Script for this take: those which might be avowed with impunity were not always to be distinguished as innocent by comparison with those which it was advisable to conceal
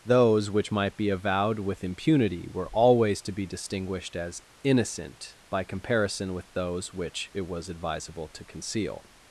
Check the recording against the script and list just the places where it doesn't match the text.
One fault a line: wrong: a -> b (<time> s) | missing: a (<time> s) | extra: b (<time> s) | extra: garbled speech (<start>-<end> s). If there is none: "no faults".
missing: not (2.7 s)